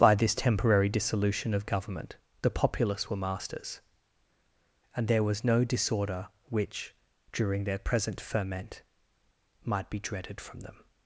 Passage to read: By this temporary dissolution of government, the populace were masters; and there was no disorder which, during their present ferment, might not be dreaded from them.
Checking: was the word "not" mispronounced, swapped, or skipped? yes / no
yes